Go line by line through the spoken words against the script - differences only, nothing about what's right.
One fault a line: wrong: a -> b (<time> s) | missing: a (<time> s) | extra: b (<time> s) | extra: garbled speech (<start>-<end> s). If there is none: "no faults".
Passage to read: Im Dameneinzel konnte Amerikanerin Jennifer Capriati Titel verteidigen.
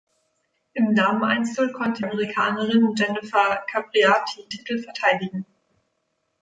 no faults